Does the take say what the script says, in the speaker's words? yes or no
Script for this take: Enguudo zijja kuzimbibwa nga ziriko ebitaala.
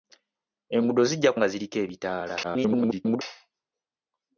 no